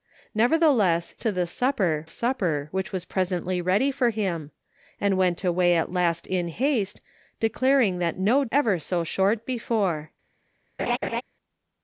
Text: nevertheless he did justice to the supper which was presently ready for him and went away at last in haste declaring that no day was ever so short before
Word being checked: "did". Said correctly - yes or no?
no